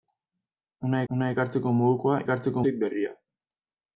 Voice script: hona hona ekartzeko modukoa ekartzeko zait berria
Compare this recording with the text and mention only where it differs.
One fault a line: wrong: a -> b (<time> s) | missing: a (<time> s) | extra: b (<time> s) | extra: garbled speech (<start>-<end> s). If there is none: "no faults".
no faults